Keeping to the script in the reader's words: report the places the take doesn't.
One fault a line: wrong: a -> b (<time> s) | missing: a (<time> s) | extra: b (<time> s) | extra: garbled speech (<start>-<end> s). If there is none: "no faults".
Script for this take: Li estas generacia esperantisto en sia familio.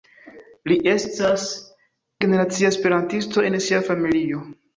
no faults